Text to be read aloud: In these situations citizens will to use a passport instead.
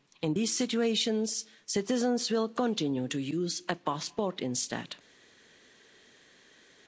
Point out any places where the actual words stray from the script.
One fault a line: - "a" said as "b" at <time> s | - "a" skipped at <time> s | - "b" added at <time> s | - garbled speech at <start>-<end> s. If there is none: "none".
- "continue" added at 2.5 s